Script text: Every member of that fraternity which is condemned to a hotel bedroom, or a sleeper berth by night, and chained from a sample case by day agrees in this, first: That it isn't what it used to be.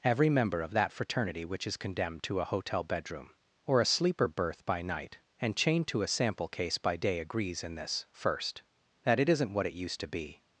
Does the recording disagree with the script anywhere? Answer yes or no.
yes